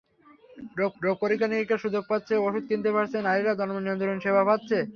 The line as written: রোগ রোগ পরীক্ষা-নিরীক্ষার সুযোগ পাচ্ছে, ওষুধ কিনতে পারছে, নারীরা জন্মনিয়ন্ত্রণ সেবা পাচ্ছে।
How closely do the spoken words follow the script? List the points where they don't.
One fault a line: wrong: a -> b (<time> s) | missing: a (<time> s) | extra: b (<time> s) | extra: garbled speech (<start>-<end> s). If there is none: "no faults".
no faults